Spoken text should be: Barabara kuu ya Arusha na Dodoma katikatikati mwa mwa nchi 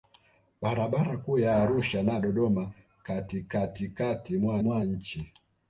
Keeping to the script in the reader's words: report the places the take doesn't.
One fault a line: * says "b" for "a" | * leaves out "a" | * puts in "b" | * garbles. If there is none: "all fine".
all fine